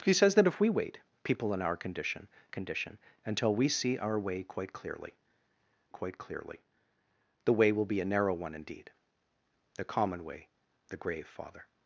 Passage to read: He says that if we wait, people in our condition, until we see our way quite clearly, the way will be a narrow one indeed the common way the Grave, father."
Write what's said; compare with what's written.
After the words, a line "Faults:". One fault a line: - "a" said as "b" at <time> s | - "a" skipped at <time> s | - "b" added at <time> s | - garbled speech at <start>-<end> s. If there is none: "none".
He says that if we wait, people in our condition condition, until we see our way quite clearly quite clearly, the way will be a narrow one indeed the common way the Grave, father."
Faults:
- "condition" added at 2.5 s
- "quite clearly" added at 5.9 s